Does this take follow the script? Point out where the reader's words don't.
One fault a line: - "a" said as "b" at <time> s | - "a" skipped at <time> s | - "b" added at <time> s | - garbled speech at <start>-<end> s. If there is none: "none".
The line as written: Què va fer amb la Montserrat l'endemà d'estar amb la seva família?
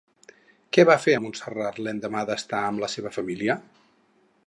- "amb" skipped at 1.1 s